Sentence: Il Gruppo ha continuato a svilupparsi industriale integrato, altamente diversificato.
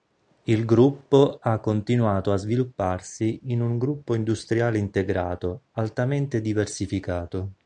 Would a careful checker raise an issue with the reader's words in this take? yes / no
yes